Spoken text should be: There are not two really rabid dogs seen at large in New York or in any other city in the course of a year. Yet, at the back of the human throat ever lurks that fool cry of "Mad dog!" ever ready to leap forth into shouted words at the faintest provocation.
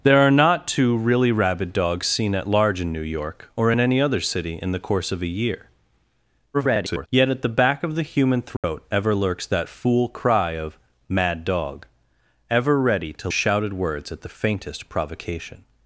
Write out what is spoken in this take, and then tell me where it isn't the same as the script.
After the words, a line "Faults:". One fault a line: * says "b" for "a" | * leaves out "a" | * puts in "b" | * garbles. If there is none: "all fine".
There are not two really rabid dogs seen at large in New York or in any other city in the course of a year. [garbled] Yet, at the back of the human throat ever lurks that fool cry of "Mad dog!" ever ready to shouted words at the faintest provocation.
Faults:
* garbles
* leaves out "leap forth into"